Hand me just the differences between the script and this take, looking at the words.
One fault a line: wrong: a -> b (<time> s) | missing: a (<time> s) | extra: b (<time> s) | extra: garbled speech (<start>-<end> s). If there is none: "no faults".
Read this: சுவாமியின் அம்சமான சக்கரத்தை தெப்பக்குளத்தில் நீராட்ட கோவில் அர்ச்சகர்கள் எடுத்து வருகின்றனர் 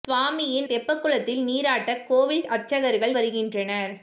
missing: அம்சமான சக்கரத்தை (0.7 s)
missing: எடுத்து (3.1 s)